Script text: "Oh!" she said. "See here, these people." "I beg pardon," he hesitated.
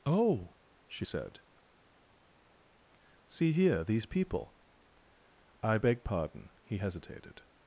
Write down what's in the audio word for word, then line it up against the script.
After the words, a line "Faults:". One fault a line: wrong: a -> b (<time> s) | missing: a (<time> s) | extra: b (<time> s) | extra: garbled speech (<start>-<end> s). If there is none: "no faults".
"Oh!" she said. "See here, these people." "I beg pardon," he hesitated.
Faults:
no faults